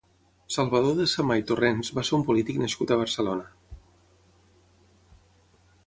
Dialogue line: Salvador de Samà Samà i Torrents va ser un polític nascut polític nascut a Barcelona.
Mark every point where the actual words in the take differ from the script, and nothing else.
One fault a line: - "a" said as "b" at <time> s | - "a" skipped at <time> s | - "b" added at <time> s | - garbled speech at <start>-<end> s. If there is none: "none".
- "Samà" skipped at 1.4 s
- "polític nascut" skipped at 3.0 s